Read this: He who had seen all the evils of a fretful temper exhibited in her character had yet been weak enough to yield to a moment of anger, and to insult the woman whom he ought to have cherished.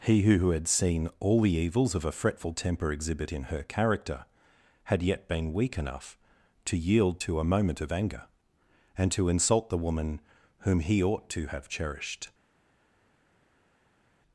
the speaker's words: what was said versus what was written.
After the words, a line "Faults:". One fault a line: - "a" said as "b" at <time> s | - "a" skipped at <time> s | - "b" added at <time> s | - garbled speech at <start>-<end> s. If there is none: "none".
He who had seen all the evils of a fretful temper exhibit in her character had yet been weak enough to yield to a moment of anger, and to insult the woman whom he ought to have cherished.
Faults:
- "exhibited" said as "exhibit" at 2.9 s